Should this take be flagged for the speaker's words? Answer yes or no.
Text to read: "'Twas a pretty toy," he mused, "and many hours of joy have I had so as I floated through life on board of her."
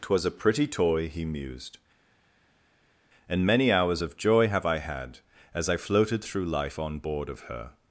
yes